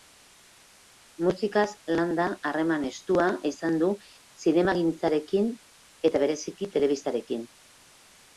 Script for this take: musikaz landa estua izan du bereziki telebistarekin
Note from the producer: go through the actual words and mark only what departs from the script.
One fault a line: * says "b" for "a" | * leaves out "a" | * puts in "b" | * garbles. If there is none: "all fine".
* puts in "harreman"
* puts in "zinemagintzarekin eta"